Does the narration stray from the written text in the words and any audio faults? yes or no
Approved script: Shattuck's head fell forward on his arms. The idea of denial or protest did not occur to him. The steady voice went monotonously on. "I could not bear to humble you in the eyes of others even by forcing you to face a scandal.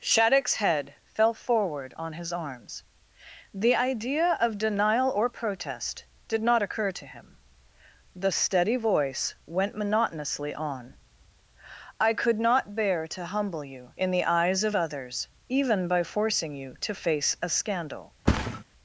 yes